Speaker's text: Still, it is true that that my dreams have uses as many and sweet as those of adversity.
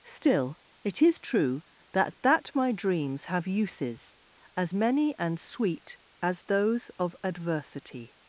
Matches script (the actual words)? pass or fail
pass